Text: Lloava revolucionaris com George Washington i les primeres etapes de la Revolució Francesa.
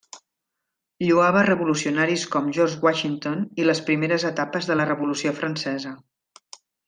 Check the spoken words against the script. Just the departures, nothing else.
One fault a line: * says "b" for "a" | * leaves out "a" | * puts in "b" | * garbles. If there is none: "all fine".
all fine